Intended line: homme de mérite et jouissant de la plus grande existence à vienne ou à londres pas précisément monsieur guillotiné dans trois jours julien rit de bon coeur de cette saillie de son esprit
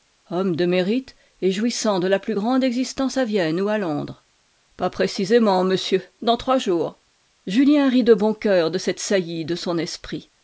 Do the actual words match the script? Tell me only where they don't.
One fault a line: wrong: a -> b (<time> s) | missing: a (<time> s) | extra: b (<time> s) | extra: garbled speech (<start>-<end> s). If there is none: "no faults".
missing: guillotiné (6.0 s)